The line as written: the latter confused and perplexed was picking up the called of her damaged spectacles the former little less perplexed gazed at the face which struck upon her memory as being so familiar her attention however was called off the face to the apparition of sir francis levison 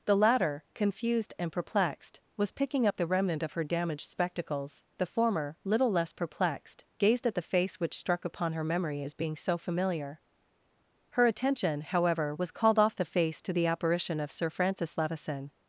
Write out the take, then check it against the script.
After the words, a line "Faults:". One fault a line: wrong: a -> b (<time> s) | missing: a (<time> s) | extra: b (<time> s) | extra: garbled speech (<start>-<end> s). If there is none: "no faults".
the latter confused and perplexed was picking up the remnant of her damaged spectacles the former little less perplexed gazed at the face which struck upon her memory as being so familiar her attention however was called off the face to the apparition of sir francis levison
Faults:
wrong: called -> remnant (3.1 s)